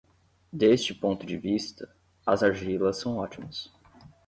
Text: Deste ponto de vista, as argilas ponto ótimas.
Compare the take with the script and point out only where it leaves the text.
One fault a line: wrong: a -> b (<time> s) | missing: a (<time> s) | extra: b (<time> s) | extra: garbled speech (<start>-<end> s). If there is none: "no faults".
wrong: ponto -> são (3.0 s)